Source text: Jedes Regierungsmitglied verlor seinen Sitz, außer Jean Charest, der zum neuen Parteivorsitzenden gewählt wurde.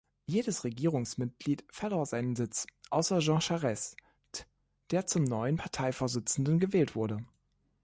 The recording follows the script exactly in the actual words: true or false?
true